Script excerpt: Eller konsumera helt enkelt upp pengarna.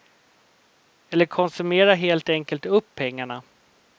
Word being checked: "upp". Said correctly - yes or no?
yes